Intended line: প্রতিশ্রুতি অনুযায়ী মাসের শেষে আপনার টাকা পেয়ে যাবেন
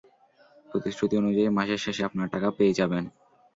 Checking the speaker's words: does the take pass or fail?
pass